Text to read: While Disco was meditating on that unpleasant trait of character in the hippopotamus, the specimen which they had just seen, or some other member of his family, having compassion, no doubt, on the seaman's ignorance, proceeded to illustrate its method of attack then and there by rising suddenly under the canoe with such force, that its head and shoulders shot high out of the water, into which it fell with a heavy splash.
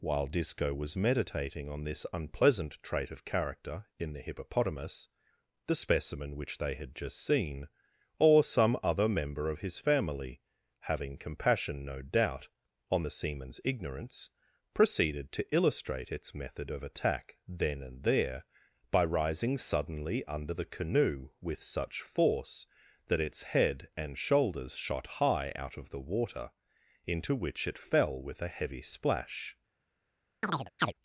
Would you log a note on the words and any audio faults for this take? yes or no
yes